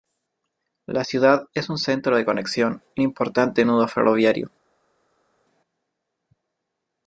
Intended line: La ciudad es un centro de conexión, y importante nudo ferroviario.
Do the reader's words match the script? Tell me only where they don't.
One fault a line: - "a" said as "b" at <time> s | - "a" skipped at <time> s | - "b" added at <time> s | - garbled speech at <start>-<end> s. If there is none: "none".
none